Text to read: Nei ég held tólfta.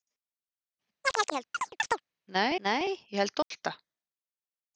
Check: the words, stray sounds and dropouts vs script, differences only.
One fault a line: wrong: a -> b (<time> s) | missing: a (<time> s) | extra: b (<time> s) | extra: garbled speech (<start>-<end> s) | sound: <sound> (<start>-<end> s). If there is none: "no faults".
sound: chirp (1.0-2.0 s)
extra: nei (2.7 s)
sound: dropout (3.4-3.5 s)